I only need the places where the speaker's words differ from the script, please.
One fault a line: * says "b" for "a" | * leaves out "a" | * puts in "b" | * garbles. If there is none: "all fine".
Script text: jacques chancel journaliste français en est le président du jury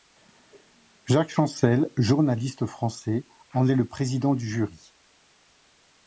all fine